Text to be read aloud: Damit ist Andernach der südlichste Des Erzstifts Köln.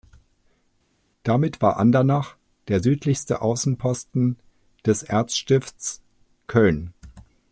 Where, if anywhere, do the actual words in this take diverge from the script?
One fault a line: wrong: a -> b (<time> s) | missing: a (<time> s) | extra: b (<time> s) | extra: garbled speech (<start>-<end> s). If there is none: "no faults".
wrong: ist -> war (1.6 s)
extra: Außenposten (3.4 s)